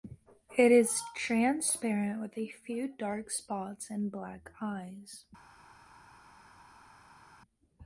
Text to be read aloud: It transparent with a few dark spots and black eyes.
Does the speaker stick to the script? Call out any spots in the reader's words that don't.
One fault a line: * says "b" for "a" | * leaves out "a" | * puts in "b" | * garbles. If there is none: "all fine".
* puts in "is"